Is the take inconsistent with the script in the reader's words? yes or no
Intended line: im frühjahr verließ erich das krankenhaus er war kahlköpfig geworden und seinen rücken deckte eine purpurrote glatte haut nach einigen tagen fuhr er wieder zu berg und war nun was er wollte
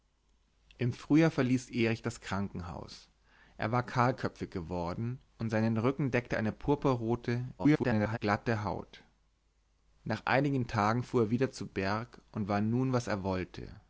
yes